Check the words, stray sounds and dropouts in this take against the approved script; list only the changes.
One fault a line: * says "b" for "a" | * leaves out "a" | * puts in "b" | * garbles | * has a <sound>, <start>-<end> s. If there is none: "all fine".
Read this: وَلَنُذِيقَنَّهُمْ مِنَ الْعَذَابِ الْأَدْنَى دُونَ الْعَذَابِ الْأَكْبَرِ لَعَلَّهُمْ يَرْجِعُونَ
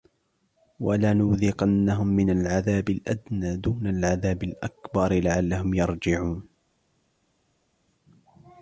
all fine